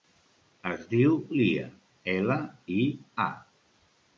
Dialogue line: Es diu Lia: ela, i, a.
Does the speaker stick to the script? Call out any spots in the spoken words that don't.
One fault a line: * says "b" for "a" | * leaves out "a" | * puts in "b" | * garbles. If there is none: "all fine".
all fine